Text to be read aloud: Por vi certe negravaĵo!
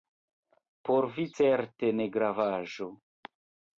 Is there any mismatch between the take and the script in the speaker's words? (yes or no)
no